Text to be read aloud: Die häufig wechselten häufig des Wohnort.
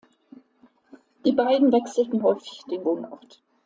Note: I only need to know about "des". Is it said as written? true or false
false